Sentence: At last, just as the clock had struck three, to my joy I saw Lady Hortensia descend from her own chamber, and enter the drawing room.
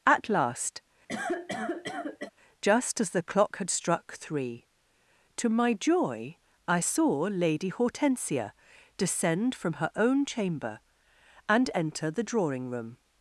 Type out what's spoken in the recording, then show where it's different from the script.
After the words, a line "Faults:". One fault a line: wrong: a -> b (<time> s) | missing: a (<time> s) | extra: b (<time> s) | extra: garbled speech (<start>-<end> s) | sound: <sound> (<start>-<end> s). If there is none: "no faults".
At last, just as the clock had struck three, to my joy I saw Lady Hortensia descend from her own chamber, and enter the drawing room.
Faults:
sound: cough (1.1-2.3 s)